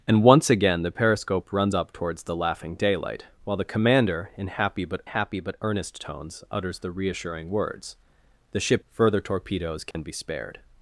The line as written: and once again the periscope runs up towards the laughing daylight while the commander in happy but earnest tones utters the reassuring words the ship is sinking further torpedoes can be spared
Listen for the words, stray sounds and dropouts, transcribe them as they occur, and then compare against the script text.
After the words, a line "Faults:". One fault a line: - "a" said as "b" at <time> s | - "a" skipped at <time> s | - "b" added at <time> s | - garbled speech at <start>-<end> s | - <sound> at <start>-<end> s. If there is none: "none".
and once again the periscope runs up towards the laughing daylight while the commander in happy but happy but earnest tones utters the reassuring words the ship further torpedoes can be spared
Faults:
- "happy but" added at 5.0 s
- "is sinking" skipped at 8.9 s
- dropout at 9.9-9.9 s